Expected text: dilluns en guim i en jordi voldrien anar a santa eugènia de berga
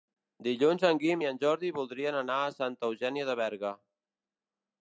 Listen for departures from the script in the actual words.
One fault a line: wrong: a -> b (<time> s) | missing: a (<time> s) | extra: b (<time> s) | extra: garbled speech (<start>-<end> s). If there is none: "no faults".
no faults